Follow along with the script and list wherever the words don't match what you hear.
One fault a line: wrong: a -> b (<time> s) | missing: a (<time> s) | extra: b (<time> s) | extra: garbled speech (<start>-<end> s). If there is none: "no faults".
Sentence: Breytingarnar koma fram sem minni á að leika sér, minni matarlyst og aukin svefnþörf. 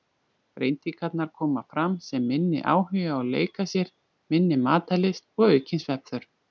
extra: áhugi (2.7 s)